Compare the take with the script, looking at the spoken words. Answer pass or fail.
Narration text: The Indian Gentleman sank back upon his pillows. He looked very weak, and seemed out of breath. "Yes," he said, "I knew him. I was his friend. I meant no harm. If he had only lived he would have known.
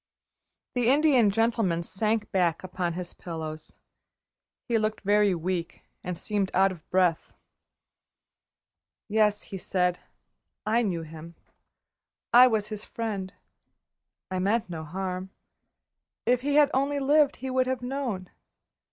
pass